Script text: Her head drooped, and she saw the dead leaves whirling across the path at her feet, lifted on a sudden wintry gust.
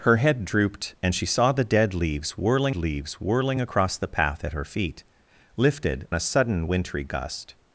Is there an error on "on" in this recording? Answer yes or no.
yes